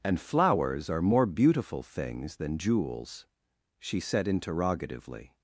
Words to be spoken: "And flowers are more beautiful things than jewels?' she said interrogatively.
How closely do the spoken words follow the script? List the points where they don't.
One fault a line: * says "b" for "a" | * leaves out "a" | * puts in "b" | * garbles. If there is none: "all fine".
all fine